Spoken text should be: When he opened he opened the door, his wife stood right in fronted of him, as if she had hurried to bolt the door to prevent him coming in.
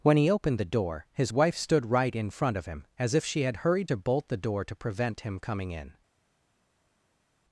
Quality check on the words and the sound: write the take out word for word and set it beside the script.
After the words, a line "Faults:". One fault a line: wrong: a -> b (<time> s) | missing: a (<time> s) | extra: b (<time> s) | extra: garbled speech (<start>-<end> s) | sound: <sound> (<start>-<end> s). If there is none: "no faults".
When he opened the door, his wife stood right in front of him, as if she had hurried to bolt the door to prevent him coming in.
Faults:
missing: he opened (0.6 s)
wrong: fronted -> front (2.3 s)